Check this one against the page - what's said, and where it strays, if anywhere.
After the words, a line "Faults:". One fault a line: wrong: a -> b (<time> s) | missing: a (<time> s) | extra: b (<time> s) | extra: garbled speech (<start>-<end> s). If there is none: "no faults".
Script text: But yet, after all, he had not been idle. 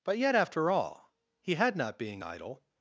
But yet, after all, he had not being idle.
Faults:
wrong: been -> being (2.0 s)